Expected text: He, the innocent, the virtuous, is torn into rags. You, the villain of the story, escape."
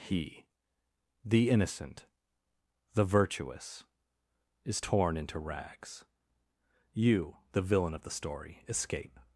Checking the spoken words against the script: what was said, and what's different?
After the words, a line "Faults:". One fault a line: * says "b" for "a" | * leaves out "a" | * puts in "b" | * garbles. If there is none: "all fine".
He, the innocent, the virtuous, is torn into rags. You, the villain of the story, escape."
Faults:
all fine